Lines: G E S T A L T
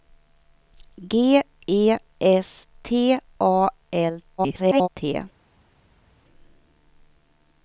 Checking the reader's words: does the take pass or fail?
fail